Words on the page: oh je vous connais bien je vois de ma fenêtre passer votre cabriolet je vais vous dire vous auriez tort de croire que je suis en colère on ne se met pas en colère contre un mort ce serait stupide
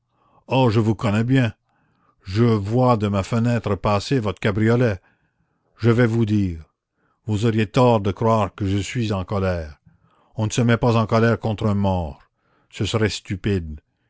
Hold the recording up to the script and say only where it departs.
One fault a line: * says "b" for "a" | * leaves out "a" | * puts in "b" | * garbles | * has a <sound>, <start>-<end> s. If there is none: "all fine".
all fine